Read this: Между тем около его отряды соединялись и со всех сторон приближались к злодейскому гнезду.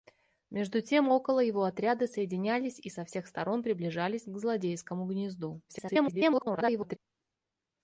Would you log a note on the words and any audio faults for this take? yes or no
yes